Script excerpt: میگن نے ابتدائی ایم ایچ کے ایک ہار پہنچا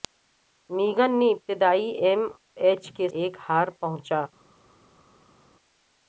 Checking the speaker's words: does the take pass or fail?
pass